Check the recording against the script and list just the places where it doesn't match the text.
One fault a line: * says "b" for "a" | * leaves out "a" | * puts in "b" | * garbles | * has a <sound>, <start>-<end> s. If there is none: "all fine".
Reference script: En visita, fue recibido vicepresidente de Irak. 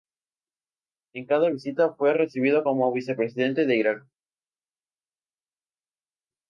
* puts in "cada"
* puts in "como"